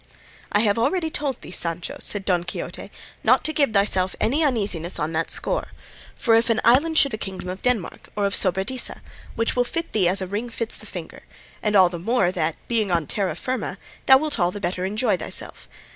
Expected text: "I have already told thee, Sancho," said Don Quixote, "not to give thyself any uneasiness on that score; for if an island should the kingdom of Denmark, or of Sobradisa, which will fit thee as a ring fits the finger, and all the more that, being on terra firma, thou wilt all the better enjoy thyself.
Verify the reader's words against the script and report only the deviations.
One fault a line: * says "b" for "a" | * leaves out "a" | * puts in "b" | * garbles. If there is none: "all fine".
all fine